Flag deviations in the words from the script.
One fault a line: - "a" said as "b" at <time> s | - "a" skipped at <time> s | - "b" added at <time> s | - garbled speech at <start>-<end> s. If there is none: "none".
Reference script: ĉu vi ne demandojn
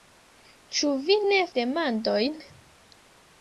none